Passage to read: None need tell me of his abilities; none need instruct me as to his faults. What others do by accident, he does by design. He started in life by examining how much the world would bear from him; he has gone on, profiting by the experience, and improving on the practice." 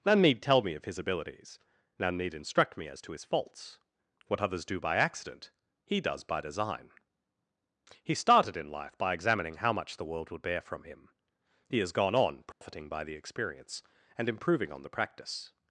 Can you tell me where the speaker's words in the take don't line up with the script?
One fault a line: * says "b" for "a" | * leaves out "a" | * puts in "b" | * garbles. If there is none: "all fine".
all fine